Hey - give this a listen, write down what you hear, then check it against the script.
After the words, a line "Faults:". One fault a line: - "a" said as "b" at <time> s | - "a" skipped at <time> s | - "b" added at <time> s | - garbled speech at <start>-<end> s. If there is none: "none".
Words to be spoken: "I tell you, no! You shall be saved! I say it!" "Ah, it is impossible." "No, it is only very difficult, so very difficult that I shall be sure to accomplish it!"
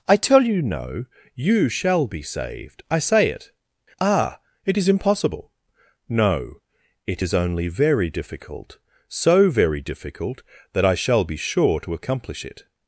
"I tell you, no! You shall be saved! I say it!" "Ah, it is impossible." "No, it is only very difficult, so very difficult that I shall be sure to accomplish it!"
Faults:
none